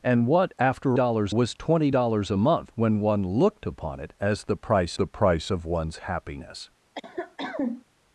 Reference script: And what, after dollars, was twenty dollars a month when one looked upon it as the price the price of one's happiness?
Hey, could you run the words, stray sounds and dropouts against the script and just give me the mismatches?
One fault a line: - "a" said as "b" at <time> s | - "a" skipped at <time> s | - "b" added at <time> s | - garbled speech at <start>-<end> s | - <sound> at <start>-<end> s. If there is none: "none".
- cough at 6.9-7.8 s